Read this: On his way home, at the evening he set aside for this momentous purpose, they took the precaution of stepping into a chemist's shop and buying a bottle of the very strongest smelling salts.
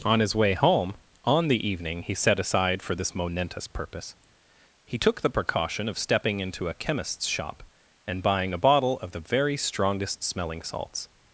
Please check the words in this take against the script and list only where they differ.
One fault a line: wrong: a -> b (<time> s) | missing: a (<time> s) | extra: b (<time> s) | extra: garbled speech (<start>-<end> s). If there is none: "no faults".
wrong: at -> on (1.2 s)
wrong: they -> he (4.9 s)